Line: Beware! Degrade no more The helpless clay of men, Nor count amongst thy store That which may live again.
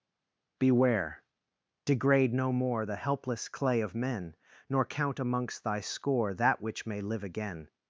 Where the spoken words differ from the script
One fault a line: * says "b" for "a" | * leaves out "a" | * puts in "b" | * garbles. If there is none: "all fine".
* says "score" for "store"